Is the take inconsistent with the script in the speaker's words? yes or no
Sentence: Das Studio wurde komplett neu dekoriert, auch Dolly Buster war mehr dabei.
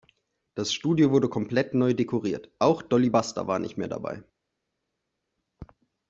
yes